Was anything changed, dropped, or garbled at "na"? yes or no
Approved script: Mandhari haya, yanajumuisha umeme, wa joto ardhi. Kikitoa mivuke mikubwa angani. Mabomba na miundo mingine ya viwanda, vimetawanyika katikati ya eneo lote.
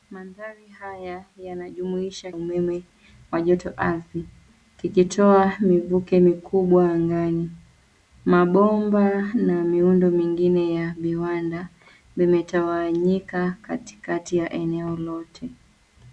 no